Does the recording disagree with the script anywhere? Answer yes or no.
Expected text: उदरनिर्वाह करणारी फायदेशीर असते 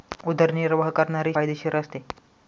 no